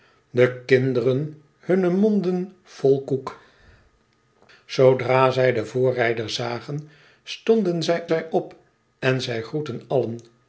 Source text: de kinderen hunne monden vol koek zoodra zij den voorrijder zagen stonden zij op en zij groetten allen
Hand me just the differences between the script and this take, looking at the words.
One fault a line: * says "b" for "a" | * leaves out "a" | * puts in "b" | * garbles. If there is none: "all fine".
* puts in "zij"